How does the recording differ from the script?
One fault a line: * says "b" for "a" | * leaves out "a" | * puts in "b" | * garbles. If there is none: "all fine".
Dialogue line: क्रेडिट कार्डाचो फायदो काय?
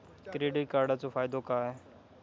all fine